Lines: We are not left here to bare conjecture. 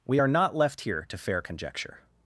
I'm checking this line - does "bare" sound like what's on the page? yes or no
no